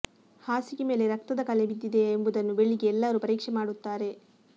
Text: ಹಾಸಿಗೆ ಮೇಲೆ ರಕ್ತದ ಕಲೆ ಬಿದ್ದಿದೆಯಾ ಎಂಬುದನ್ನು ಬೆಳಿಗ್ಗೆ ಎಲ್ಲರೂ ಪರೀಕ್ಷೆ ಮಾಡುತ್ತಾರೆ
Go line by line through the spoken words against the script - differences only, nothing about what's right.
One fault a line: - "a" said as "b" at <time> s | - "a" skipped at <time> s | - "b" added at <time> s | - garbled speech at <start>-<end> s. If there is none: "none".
none